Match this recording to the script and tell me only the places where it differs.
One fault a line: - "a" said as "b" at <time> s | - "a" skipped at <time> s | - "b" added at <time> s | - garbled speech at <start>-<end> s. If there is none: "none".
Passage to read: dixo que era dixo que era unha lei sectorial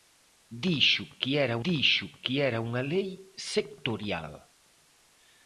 none